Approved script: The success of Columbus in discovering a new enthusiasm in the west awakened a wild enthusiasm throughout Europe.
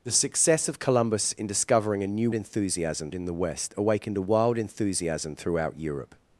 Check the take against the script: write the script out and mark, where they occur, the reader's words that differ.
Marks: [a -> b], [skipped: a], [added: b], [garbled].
The success of Columbus in discovering a new enthusiasm in the west awakened a wild enthusiasm throughout Europe.